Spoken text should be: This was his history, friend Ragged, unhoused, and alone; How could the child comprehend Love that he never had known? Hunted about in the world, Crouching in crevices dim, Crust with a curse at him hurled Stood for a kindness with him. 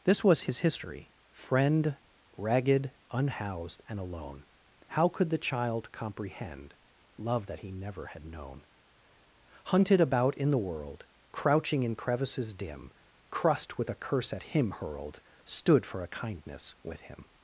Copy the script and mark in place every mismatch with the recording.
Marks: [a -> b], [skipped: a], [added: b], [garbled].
This was his history, friend Ragged, unhoused, and alone; How could the child comprehend Love that he never had known? Hunted about in the world, Crouching in crevices dim, Crust with a curse at him hurled Stood for a kindness with him.